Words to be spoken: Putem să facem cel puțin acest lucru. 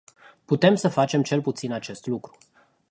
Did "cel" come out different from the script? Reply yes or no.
no